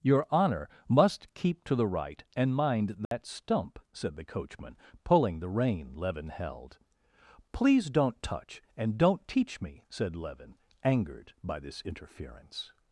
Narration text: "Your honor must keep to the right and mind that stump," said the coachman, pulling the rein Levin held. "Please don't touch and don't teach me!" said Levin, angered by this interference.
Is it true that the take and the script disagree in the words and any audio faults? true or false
true